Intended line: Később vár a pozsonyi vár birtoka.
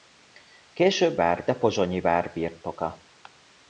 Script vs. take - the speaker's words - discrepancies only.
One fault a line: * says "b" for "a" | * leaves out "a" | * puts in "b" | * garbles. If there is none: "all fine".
all fine